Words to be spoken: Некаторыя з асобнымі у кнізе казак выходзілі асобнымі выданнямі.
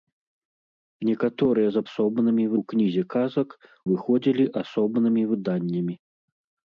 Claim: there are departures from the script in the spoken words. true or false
false